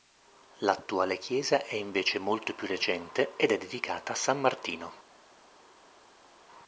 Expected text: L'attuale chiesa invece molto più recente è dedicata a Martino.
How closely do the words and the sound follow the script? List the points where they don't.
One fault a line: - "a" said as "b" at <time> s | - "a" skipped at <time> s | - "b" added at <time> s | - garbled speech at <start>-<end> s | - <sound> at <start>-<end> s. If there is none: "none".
- "è" added at 1.6 s
- "ed" added at 3.4 s
- "San" added at 4.2 s